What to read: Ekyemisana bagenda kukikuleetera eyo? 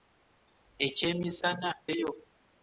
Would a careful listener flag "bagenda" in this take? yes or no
yes